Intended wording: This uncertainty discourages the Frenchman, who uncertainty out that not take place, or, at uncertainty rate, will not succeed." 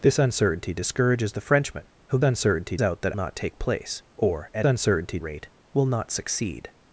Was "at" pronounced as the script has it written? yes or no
yes